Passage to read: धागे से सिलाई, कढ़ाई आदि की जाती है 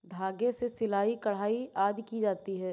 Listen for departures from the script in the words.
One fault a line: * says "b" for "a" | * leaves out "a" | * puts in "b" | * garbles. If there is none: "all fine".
all fine